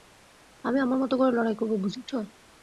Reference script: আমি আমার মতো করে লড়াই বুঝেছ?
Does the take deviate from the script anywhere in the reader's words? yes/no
yes